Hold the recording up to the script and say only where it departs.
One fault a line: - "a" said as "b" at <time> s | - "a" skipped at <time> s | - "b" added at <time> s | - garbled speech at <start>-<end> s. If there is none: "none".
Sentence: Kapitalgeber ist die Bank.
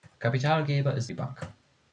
none